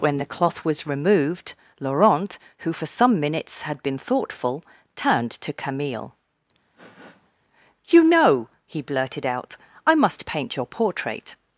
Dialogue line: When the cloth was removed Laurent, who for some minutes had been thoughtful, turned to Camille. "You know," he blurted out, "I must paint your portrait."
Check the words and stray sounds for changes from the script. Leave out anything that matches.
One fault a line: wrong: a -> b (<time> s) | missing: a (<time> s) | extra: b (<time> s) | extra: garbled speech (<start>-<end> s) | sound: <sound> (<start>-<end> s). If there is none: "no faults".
sound: sniff (6.7-7.3 s)